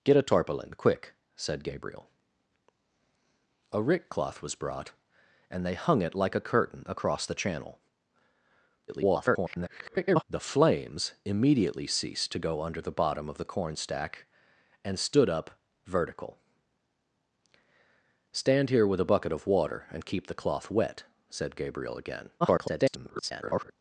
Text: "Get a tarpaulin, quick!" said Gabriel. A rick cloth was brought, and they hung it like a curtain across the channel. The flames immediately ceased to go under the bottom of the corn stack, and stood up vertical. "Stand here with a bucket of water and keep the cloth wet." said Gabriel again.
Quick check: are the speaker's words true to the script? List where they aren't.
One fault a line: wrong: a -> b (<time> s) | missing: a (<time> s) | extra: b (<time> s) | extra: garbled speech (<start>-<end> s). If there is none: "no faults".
extra: garbled speech (8.9-10.2 s)
extra: garbled speech (22.4-23.7 s)